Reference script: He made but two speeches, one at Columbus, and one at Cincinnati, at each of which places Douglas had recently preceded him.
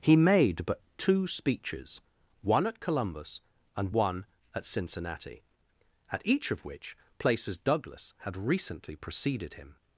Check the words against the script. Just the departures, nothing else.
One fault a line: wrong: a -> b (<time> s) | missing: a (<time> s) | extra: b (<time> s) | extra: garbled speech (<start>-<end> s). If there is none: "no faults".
no faults